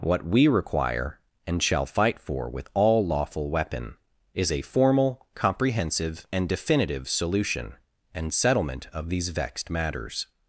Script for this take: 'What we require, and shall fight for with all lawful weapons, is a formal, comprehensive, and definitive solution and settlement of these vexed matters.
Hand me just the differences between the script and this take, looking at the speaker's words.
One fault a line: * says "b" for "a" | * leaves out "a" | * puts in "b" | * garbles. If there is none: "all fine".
* says "weapon" for "weapons"